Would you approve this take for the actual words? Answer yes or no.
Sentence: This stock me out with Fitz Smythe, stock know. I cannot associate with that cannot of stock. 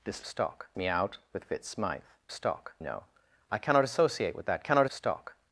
yes